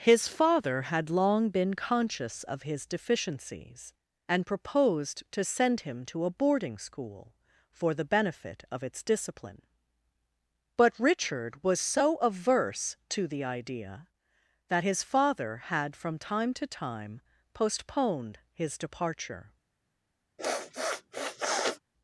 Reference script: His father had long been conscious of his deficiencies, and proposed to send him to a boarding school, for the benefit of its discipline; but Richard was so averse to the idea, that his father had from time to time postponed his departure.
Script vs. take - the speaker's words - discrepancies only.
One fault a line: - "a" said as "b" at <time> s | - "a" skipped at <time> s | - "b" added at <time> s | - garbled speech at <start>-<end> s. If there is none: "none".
none